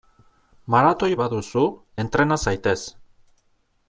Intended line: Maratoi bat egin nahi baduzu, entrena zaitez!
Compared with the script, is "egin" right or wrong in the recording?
wrong